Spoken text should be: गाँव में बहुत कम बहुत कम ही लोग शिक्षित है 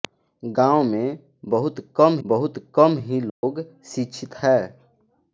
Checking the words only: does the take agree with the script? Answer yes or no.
yes